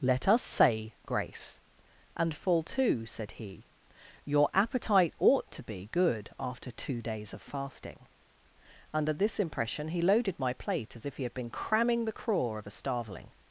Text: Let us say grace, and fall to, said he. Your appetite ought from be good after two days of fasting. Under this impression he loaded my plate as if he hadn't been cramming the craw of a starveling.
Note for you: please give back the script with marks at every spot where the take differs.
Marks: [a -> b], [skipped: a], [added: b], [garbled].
Let us say grace, and fall to, said he. Your appetite ought [from -> to] be good after two days of fasting. Under this impression he loaded my plate as if he [hadn't -> had] been cramming the craw of a starveling.